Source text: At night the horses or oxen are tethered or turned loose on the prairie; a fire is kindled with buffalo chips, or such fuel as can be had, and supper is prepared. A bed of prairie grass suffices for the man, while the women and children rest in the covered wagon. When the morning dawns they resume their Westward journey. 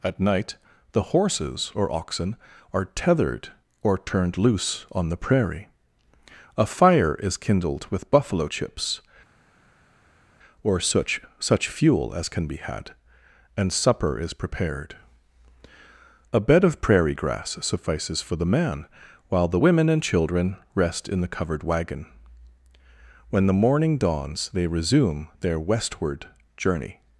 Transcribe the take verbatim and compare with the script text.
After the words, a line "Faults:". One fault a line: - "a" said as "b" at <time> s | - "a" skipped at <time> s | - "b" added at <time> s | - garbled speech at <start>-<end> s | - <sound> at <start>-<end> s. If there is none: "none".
At night the horses or oxen are tethered or turned loose on the prairie; a fire is kindled with buffalo chips, or such such fuel as can be had, and supper is prepared. A bed of prairie grass suffices for the man, while the women and children rest in the covered wagon. When the morning dawns they resume their Westward journey.
Faults:
- "such" added at 11.4 s